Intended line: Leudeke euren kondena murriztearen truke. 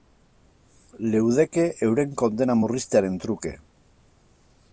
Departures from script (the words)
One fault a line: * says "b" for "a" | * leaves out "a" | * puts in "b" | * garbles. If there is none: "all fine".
all fine